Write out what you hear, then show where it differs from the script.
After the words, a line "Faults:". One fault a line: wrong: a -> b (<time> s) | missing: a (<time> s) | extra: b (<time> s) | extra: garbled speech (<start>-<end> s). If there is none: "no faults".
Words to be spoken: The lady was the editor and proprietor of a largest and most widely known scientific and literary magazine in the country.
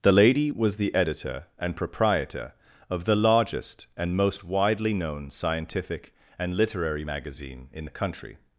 The lady was the editor and proprietor of the largest and most widely known scientific and literary magazine in the country.
Faults:
wrong: a -> the (3.0 s)